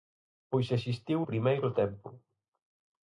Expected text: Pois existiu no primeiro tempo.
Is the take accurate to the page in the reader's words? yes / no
no